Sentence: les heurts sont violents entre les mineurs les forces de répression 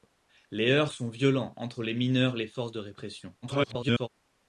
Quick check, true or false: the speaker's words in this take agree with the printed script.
false